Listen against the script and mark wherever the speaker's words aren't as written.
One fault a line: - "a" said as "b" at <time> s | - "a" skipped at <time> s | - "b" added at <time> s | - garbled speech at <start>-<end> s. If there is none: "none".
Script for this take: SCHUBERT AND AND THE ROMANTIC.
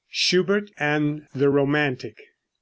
- "AND" skipped at 1.3 s